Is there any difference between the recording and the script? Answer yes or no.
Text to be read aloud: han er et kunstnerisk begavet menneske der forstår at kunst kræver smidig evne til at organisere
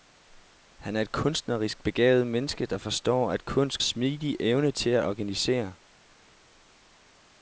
yes